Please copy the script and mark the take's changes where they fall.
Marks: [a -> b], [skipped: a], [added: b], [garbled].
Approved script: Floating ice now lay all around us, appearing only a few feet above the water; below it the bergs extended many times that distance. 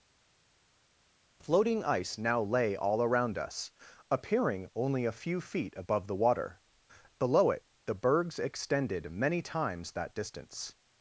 Floating ice now lay all around us, appearing only a few feet above the water; below it the bergs extended many times that distance.